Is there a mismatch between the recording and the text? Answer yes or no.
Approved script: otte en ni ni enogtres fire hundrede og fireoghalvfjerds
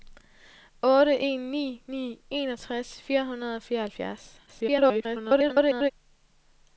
yes